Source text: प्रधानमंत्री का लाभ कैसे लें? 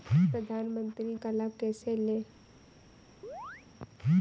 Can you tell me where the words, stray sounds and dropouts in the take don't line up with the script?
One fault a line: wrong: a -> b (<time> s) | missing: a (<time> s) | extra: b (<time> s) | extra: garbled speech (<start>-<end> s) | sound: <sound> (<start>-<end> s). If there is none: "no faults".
sound: chirp (3.2-3.7 s)